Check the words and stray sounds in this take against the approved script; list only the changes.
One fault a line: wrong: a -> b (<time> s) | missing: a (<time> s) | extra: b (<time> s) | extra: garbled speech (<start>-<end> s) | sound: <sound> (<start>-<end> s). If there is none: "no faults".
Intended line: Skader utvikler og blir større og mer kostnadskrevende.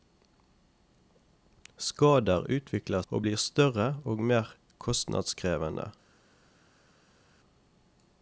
no faults